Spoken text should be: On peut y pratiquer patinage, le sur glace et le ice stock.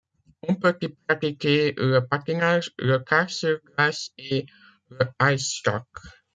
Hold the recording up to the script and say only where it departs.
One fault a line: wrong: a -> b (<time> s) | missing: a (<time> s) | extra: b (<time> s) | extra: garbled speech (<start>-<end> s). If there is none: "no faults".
extra: le (1.8 s)
extra: kart (3.0 s)